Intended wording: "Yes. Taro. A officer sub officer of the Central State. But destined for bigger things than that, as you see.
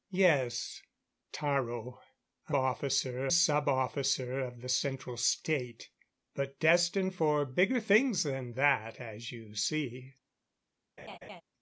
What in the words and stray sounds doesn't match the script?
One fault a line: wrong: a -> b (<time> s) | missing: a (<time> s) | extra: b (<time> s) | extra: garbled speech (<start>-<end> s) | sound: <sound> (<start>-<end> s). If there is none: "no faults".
sound: laugh (11.0-11.4 s)